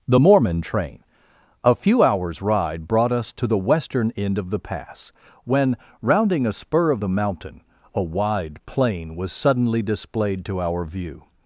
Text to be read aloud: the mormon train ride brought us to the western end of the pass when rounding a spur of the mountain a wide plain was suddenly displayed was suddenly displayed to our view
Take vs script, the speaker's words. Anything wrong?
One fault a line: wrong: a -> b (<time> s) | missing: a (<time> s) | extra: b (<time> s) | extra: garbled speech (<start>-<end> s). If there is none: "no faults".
extra: a few hours (1.6 s)
missing: was suddenly displayed (10.4 s)